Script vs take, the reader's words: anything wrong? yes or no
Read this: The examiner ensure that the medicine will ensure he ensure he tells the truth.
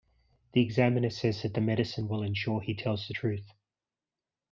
yes